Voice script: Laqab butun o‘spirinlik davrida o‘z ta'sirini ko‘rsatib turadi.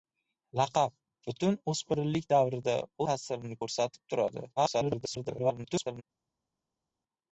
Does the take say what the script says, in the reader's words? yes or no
no